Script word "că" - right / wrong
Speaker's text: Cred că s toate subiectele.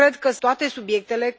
right